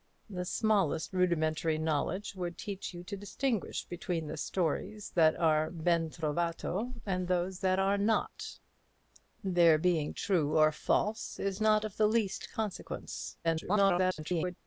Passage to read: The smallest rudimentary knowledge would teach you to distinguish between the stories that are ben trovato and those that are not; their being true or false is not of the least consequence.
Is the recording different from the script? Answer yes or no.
yes